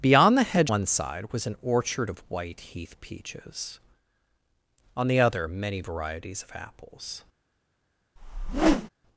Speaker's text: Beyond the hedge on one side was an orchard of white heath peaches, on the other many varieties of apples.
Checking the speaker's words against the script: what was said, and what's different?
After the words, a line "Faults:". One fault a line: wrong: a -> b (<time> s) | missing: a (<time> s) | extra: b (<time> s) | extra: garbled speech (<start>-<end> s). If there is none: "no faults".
Beyond the hedge one side was an orchard of white heath peaches, on the other many varieties of apples.
Faults:
missing: on (0.7 s)